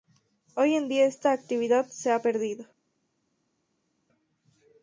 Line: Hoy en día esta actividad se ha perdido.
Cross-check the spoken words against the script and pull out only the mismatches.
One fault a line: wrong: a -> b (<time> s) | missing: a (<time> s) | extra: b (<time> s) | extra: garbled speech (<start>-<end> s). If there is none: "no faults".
no faults